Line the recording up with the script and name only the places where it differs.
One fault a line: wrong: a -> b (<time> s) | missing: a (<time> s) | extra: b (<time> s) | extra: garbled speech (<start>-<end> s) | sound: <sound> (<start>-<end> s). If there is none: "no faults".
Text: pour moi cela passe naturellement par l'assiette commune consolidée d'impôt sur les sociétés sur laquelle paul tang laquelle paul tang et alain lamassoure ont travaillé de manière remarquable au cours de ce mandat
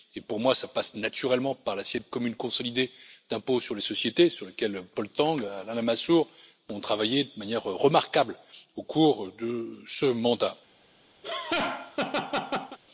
missing: laquelle paul tang (5.4 s)
sound: laugh (11.2-12.8 s)